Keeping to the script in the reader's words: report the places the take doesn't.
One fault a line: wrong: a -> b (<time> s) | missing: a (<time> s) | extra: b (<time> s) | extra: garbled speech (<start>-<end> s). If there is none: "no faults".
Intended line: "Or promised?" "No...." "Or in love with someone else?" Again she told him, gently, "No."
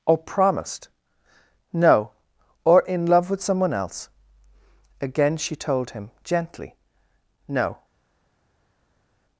no faults